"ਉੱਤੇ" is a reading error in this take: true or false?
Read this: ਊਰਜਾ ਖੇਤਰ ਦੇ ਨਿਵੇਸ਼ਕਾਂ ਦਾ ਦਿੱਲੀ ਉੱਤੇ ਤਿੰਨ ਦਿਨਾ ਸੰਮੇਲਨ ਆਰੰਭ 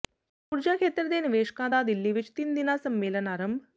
true